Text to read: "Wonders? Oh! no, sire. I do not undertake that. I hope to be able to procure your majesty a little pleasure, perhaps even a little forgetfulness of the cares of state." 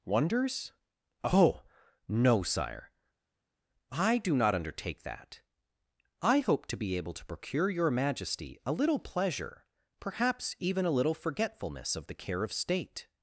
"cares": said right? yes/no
no